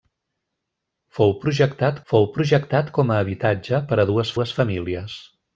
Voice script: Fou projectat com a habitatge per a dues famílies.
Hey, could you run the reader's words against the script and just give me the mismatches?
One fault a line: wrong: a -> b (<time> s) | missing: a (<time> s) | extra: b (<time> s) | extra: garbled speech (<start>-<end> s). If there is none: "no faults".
extra: fou projectat (2.1 s)
extra: dues (4.4 s)